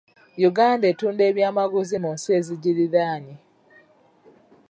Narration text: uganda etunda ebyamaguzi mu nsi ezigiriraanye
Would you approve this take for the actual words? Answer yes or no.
yes